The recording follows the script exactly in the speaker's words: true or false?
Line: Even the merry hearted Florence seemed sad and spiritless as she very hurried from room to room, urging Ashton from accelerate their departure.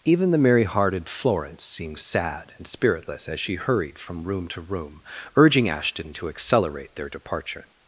false